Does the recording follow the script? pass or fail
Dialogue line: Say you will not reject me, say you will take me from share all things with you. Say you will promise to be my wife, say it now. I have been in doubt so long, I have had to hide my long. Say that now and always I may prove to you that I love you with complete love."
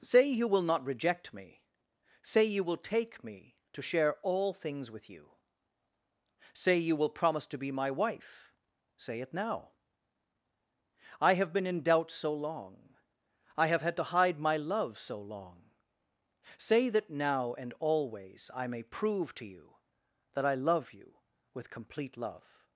fail